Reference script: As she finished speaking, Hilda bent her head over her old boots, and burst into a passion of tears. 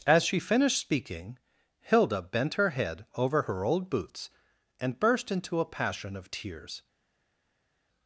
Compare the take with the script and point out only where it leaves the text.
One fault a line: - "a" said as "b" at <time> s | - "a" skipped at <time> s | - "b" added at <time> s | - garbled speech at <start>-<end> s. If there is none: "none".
none